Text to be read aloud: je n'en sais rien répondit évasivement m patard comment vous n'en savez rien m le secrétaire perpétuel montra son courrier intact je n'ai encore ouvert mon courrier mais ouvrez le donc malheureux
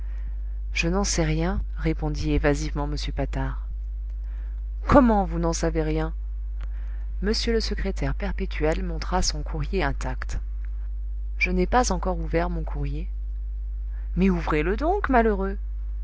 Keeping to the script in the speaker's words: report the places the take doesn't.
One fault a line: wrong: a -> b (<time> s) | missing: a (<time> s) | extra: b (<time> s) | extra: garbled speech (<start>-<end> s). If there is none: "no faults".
extra: pas (11.7 s)